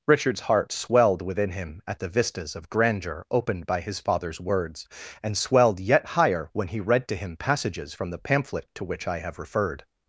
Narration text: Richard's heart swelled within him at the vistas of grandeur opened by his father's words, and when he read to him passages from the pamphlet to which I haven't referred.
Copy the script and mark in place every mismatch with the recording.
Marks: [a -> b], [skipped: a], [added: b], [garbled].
Richard's heart swelled within him at the vistas of grandeur opened by his father's words, and [added: swelled yet higher] when he read to him passages from the pamphlet to which I [haven't -> have] referred.